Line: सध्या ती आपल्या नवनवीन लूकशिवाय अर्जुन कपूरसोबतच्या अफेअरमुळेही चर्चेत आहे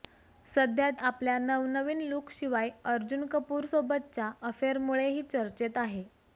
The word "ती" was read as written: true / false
false